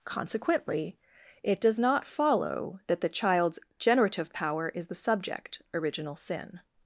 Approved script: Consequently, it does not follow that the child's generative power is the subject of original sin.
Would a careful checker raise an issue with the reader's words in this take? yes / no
yes